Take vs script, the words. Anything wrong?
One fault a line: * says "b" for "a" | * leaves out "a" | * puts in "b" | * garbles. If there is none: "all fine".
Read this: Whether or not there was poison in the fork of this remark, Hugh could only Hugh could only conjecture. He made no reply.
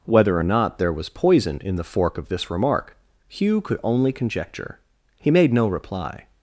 * leaves out "Hugh could only"